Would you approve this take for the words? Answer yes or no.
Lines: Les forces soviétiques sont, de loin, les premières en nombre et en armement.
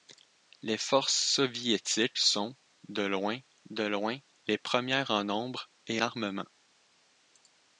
no